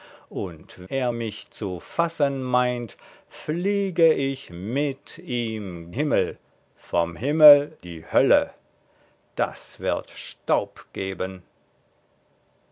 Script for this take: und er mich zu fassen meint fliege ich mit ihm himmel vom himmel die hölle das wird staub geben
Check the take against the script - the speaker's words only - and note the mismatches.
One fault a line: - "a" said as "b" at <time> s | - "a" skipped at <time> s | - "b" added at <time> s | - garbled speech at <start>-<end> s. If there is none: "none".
none